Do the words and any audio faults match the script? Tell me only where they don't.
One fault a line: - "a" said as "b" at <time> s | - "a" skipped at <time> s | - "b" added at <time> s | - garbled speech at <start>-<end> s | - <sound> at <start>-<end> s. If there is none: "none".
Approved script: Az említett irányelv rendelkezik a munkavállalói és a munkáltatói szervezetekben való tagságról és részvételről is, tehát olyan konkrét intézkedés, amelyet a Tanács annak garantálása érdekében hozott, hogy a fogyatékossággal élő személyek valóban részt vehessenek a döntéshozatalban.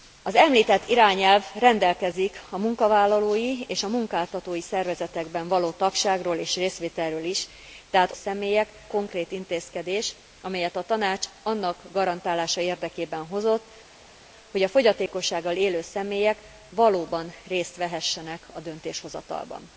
- "olyan" said as "személyek" at 8.1 s